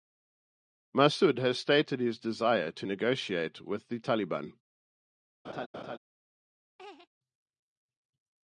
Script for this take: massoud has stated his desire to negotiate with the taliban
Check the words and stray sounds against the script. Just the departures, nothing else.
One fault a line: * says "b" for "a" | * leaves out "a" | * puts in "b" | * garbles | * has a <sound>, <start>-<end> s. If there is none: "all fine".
* has a laugh, 5.4-6.0 s
* has a laugh, 6.8-7.1 s